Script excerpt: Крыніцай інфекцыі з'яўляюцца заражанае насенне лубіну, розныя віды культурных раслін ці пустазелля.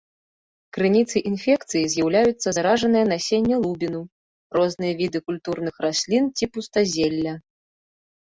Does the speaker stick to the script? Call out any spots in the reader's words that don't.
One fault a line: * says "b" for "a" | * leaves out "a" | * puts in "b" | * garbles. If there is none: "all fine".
all fine